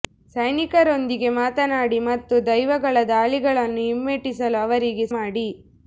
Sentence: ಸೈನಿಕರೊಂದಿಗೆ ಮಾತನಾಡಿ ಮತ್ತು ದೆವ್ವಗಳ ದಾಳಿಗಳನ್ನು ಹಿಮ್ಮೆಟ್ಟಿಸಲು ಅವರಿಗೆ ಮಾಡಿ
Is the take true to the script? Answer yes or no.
yes